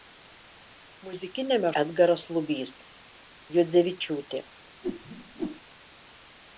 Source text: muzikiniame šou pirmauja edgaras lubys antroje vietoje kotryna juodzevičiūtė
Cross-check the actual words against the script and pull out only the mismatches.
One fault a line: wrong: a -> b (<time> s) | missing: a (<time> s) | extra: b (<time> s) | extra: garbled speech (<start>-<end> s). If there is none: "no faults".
missing: šou pirmauja (1.7 s)
missing: antroje vietoje kotryna (2.7 s)